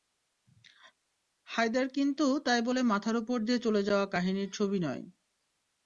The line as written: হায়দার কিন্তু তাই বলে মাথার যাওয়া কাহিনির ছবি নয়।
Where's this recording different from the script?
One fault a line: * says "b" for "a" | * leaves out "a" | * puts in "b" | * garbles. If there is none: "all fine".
* puts in "ওপর দিয়ে চলে"